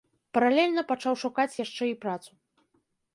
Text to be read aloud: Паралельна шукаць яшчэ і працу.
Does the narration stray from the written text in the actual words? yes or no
yes